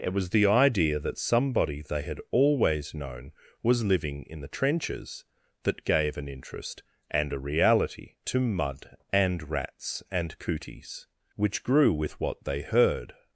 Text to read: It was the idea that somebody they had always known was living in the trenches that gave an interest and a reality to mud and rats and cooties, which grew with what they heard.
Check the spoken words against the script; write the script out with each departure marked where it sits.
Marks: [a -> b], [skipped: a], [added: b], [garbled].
It was the idea that somebody they had always known was living in the trenches that gave an interest and a reality to mud and rats and cooties, which grew with what they heard.